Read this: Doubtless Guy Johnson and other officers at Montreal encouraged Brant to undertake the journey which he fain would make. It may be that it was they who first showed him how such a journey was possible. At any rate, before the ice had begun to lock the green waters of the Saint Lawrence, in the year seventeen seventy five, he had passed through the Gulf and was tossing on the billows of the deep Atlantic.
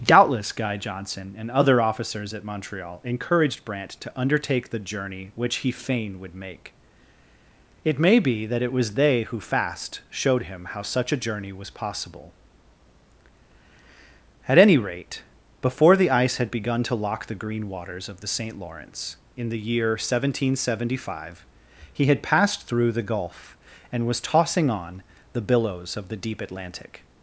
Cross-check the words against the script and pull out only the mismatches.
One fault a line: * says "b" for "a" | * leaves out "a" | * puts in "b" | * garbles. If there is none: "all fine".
* says "fast" for "first"